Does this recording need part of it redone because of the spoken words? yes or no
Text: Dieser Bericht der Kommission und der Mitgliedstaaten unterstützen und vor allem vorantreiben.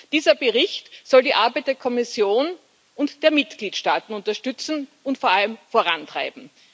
yes